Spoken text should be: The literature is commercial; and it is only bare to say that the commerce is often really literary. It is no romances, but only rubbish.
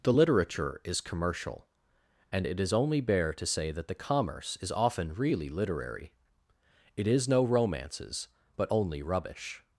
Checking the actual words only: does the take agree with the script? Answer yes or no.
yes